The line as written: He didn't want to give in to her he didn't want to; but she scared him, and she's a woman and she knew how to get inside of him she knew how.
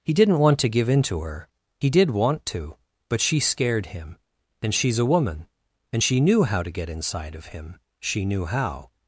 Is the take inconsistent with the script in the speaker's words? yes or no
yes